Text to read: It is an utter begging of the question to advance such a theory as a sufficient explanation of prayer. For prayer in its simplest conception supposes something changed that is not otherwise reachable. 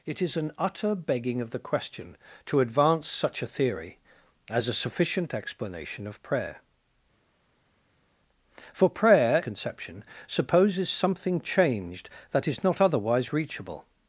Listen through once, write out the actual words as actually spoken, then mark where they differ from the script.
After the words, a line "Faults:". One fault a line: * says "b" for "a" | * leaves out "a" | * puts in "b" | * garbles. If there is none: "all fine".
It is an utter begging of the question to advance such a theory as a sufficient explanation of prayer. For prayer conception supposes something changed that is not otherwise reachable.
Faults:
* leaves out "in its simplest"